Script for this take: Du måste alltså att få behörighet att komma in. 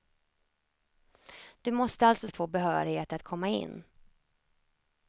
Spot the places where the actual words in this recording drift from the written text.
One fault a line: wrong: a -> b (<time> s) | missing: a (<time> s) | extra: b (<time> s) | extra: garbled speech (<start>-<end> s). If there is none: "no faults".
no faults